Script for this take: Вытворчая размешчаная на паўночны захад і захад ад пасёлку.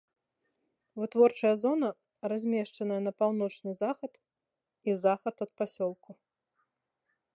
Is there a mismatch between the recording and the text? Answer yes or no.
yes